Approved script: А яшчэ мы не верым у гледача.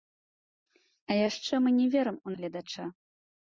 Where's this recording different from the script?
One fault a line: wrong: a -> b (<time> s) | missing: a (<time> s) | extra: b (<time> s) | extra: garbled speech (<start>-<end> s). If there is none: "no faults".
no faults